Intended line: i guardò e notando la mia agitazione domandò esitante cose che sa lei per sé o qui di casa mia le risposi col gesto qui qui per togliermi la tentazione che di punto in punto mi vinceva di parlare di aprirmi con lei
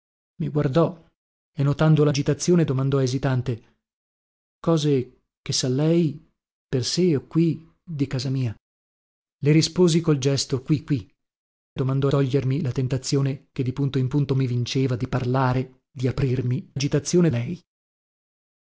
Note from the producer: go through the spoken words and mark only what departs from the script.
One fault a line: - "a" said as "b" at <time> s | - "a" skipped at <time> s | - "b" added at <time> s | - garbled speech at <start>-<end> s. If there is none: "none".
- "mia" skipped at 2.1 s
- "per" said as "domandò" at 11.8 s
- "con" said as "agitazione" at 16.7 s